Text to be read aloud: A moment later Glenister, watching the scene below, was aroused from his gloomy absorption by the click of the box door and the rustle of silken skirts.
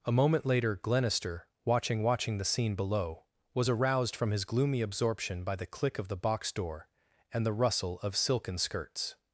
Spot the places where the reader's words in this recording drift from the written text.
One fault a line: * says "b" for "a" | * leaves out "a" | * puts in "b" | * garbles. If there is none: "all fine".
* puts in "watching"